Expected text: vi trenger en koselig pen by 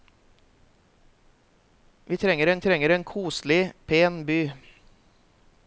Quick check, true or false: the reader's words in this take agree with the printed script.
false